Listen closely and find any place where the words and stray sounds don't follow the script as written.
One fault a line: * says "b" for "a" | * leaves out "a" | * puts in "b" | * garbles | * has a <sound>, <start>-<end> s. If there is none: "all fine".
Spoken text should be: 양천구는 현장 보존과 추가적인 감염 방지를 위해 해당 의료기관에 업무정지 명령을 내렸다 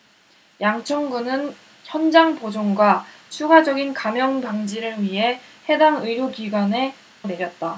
* leaves out "업무정지 명령을"